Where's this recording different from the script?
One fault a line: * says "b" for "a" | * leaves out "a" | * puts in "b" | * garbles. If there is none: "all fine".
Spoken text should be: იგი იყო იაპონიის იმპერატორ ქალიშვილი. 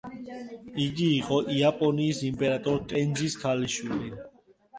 * puts in "ტენძის"